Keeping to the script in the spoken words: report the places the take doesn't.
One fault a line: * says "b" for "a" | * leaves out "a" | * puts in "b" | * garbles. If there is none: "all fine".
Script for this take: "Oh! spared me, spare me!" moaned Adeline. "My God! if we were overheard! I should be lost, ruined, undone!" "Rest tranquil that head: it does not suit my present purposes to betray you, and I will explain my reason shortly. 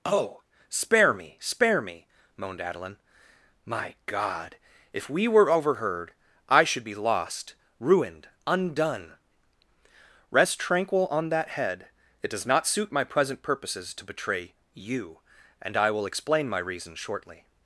* says "spare" for "spared"
* puts in "on"